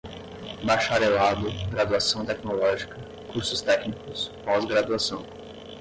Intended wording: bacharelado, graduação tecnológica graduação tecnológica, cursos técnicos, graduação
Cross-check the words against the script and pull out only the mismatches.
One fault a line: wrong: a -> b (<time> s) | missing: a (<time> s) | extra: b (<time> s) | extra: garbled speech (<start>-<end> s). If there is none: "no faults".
missing: graduação tecnológica (3.0 s)
extra: pós (4.5 s)